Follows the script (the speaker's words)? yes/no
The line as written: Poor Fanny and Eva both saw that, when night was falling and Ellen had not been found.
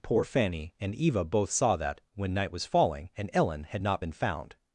yes